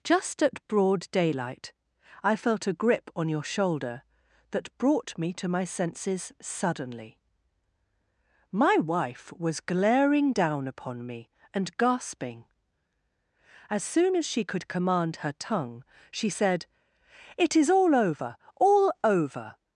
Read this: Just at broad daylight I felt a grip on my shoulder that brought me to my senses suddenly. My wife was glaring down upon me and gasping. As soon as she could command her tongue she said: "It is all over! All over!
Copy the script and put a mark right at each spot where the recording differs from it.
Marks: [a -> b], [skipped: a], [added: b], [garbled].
Just at broad daylight I felt a grip on [my -> your] shoulder that brought me to my senses suddenly. My wife was glaring down upon me and gasping. As soon as she could command her tongue she said: "It is all over! All over!